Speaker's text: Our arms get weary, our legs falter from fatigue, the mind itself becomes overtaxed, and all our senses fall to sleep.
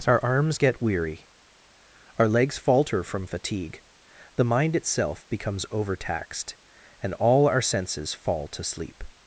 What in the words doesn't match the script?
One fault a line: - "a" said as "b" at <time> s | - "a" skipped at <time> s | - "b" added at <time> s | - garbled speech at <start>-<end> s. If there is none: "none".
none